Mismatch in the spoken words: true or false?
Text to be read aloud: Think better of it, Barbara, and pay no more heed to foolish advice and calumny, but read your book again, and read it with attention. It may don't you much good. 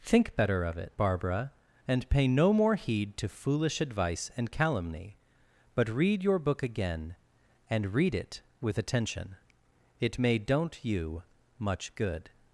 false